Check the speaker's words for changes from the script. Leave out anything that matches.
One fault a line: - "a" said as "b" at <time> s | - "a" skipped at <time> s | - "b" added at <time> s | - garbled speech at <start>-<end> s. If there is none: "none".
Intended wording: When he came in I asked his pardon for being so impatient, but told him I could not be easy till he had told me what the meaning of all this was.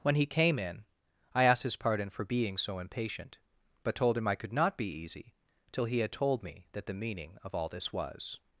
- "what" said as "that" at 6.7 s